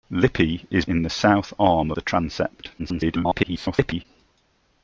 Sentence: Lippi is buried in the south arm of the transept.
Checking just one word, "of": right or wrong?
wrong